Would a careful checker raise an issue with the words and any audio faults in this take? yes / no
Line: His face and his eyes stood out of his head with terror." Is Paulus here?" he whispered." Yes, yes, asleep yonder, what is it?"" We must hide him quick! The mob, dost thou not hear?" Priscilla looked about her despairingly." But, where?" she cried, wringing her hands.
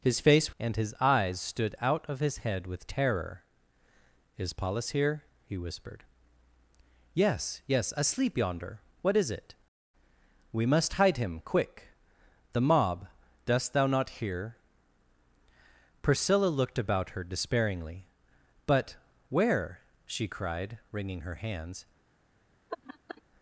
yes